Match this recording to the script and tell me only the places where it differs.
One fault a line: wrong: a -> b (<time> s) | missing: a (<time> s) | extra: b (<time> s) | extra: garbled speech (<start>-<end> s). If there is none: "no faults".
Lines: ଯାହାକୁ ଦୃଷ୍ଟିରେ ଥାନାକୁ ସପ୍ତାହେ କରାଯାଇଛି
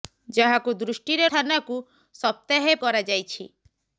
no faults